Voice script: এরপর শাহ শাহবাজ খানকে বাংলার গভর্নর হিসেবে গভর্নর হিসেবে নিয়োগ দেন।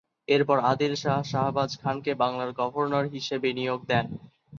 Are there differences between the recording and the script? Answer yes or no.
yes